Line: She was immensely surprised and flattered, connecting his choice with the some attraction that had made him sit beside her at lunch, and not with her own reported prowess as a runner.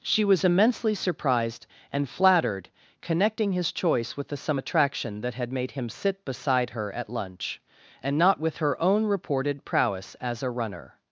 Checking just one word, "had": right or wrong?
right